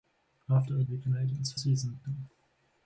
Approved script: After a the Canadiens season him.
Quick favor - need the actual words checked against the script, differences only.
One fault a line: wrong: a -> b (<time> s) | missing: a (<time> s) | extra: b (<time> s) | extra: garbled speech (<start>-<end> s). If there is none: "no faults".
no faults